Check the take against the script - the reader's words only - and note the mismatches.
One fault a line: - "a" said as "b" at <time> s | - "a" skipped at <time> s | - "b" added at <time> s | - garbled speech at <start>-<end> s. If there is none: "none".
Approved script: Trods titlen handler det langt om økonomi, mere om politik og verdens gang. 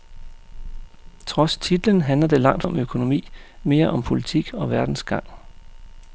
none